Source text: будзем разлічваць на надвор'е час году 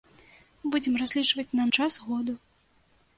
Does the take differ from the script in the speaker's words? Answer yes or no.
yes